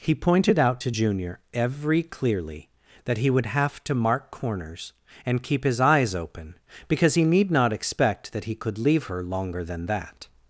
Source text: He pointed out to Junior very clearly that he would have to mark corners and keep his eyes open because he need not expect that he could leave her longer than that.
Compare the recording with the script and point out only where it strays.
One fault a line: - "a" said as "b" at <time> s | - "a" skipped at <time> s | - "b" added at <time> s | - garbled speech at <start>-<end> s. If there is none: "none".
- "very" said as "every" at 1.5 s